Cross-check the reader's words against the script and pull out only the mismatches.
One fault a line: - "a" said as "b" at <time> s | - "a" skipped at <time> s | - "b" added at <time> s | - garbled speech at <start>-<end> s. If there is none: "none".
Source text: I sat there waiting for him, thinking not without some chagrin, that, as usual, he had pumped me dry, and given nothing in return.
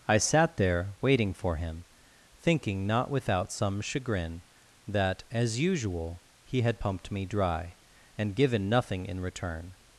none